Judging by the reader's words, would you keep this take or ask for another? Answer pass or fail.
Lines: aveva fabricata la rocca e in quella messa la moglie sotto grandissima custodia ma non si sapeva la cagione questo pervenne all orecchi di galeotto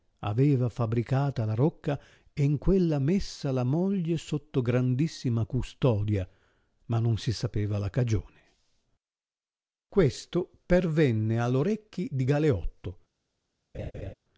pass